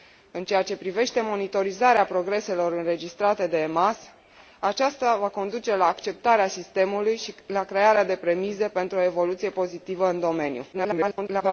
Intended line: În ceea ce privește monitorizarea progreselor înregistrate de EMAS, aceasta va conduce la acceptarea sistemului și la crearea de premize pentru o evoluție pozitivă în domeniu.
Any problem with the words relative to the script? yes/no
yes